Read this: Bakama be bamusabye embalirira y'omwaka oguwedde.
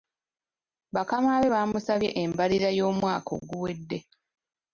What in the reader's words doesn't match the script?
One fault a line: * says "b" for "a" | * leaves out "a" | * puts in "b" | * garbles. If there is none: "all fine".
all fine